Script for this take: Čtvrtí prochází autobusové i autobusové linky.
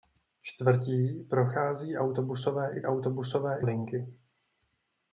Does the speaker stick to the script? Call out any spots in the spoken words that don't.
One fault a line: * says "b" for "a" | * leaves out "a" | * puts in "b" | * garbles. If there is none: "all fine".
all fine